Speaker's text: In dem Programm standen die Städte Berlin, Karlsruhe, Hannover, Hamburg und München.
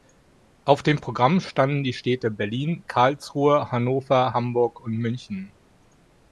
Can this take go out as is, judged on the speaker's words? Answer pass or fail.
fail